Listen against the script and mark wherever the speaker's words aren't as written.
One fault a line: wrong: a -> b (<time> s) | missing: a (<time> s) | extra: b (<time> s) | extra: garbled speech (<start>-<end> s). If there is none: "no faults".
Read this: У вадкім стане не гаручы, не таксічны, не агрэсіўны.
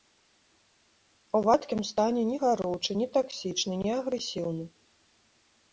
no faults